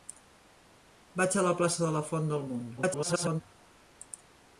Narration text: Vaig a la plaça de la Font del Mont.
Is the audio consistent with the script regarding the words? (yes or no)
no